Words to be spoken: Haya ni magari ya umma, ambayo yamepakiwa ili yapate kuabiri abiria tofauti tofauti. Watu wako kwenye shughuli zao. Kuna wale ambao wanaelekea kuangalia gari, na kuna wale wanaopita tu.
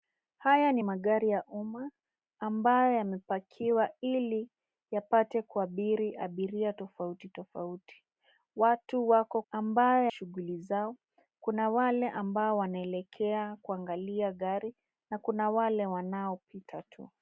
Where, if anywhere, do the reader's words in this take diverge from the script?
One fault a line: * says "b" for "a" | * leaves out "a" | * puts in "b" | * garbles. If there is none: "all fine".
* says "ambayo" for "kwenye"